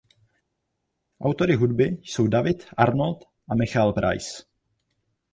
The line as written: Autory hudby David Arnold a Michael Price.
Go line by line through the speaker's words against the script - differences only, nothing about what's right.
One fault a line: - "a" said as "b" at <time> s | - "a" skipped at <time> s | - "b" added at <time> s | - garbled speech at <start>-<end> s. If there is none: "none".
- "jsou" added at 2.0 s